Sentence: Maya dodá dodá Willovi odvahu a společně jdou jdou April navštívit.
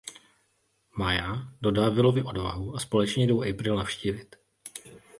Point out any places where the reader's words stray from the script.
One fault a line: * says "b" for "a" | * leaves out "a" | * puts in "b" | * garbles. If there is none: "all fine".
* leaves out "dodá"
* leaves out "jdou"